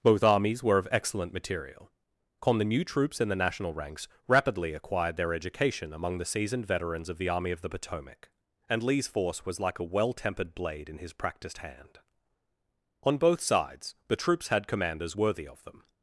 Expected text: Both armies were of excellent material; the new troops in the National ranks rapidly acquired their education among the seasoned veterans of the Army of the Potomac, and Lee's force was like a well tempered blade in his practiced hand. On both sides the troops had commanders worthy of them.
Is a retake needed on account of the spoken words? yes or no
yes